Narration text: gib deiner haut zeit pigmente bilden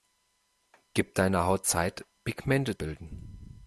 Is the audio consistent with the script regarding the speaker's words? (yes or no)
yes